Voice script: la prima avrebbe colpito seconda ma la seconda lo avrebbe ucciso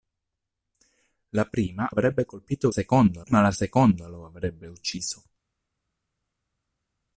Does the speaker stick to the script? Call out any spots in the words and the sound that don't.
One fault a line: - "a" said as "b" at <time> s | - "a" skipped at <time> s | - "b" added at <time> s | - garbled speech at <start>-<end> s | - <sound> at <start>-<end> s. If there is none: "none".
none